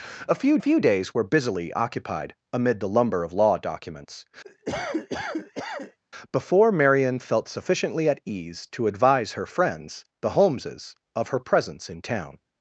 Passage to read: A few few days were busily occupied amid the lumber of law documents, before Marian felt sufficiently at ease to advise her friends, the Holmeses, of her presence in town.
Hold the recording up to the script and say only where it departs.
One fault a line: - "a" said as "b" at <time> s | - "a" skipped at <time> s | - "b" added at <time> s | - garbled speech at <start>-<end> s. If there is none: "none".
none